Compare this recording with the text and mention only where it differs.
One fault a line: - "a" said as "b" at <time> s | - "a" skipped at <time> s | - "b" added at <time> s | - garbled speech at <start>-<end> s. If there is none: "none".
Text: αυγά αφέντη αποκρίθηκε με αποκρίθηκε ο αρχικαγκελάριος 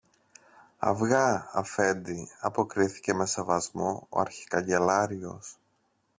- "αποκρίθηκε" said as "σεβασμό" at 3.3 s